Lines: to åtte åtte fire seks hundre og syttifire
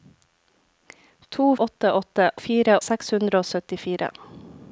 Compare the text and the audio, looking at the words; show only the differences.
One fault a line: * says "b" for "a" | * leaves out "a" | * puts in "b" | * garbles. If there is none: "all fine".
all fine